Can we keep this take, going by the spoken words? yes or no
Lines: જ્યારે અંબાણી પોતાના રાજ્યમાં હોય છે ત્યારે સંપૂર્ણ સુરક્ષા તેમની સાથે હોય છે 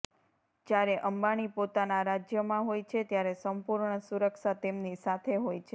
yes